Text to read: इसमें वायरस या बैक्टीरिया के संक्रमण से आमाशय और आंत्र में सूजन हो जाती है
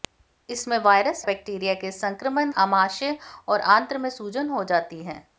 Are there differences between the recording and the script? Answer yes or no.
yes